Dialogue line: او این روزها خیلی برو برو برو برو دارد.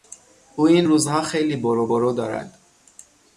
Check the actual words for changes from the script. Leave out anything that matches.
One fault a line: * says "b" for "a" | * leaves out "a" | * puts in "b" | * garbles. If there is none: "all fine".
* leaves out "برو برو"